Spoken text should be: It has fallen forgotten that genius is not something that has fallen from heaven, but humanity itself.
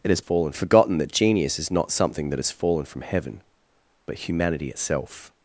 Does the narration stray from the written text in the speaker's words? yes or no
no